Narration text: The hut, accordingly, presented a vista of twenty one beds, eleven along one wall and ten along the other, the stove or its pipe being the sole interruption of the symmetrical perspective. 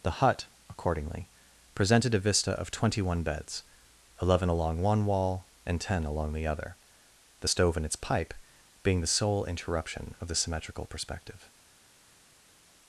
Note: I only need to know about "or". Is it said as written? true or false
false